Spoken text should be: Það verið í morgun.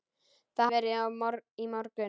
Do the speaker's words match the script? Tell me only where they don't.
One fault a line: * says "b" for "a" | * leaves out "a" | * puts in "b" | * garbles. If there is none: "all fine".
all fine